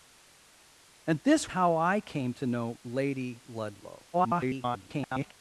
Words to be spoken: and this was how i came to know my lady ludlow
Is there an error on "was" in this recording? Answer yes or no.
yes